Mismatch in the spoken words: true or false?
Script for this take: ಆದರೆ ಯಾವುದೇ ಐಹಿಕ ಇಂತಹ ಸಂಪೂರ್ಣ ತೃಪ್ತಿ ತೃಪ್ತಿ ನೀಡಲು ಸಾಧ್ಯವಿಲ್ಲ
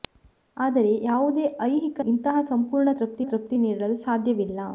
false